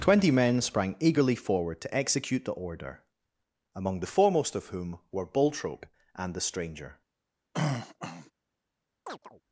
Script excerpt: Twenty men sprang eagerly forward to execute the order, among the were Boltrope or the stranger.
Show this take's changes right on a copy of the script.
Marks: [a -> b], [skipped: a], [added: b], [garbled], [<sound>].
Twenty men sprang eagerly forward to execute the order, among the [added: foremost of whom] were Boltrope [or -> and] the stranger. [throat clearing] [chirp]